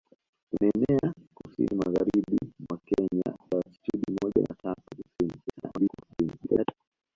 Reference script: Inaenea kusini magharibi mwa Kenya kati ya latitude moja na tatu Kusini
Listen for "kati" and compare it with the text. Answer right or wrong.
wrong